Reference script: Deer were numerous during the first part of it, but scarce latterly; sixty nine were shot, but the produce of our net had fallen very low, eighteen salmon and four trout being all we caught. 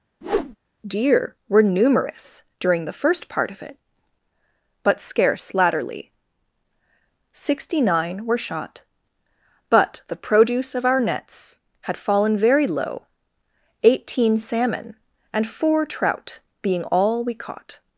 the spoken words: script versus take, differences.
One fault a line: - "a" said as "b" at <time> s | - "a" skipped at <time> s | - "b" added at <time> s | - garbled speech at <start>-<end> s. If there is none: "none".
- "net" said as "nets" at 11.0 s